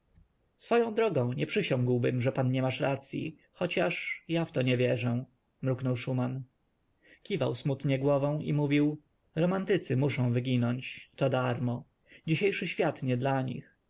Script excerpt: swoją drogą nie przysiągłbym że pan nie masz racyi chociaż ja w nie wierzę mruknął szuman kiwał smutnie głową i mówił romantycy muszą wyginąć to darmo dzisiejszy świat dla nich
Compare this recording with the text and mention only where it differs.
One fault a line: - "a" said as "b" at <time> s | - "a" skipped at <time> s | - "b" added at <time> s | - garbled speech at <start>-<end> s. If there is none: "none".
- "to" added at 4.5 s
- "nie" added at 13.0 s